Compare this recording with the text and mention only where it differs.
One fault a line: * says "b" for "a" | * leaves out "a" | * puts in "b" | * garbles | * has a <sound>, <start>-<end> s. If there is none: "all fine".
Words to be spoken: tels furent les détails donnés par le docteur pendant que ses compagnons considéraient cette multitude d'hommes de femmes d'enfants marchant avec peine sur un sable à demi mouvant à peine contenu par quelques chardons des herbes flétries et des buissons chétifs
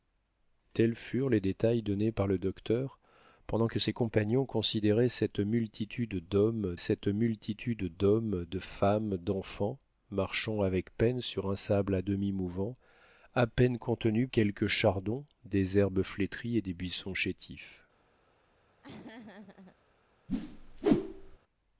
* puts in "cette multitude d'hommes"
* leaves out "par"
* has a laugh, 18.8-19.8 s
* has a whoosh, 20.3-21.4 s